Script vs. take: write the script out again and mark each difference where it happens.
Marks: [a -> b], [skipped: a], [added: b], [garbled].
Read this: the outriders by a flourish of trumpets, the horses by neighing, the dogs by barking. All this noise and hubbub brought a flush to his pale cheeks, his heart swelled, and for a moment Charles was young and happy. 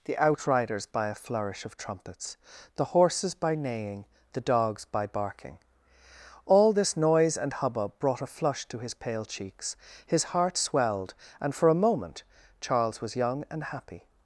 the outriders by a flourish of trumpets, the horses by neighing, the dogs by barking. All this noise and hubbub brought a flush to his pale cheeks, his heart swelled, and for a moment Charles was young and happy.